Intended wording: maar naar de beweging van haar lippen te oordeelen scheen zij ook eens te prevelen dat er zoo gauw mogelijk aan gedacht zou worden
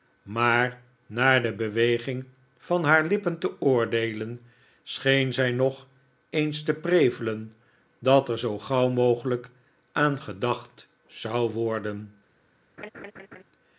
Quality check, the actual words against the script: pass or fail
fail